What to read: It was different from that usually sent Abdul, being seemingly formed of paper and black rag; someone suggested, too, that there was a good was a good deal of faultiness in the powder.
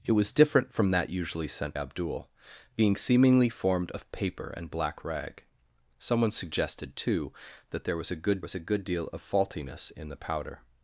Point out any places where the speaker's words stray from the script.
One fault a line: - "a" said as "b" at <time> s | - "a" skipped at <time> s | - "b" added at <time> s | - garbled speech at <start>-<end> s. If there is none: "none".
none